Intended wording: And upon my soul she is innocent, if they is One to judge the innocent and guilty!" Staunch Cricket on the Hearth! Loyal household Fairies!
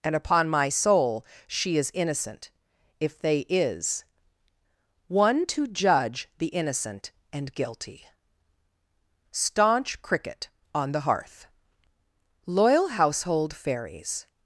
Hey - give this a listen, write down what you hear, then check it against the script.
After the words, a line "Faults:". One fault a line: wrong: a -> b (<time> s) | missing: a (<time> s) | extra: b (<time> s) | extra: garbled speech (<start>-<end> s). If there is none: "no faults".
And upon my soul she is innocent, if they is One to judge the innocent and guilty!" Staunch Cricket on the Hearth! Loyal household Fairies!
Faults:
no faults